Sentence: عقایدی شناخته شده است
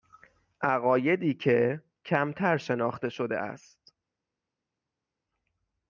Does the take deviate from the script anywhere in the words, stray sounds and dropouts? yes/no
yes